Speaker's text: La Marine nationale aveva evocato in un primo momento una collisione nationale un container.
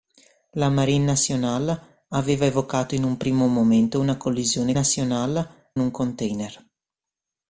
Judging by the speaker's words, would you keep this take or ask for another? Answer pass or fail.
pass